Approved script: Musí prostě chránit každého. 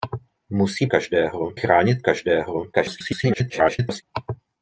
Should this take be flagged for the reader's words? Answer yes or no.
yes